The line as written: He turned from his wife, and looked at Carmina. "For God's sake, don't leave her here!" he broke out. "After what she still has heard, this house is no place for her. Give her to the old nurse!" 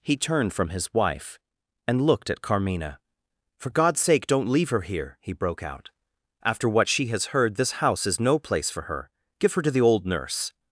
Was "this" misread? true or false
false